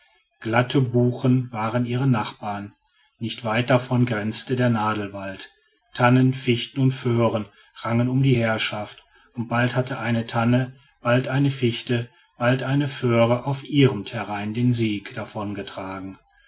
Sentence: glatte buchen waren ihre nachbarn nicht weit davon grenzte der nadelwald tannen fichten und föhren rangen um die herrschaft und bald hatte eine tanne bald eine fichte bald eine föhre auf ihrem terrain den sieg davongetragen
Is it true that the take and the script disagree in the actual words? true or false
false